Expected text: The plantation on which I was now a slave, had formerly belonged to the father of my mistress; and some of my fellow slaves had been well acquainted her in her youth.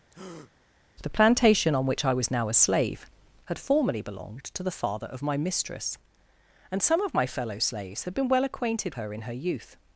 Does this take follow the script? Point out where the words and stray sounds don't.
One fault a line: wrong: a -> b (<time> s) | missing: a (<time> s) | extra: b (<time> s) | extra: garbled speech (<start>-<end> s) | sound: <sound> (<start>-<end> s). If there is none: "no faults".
sound: breath (0.1-0.5 s)